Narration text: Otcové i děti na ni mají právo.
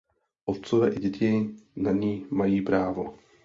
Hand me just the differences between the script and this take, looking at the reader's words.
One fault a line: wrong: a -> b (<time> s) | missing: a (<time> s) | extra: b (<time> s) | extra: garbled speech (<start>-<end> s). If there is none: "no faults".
no faults